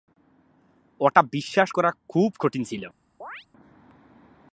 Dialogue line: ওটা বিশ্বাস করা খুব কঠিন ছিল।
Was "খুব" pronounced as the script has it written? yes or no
yes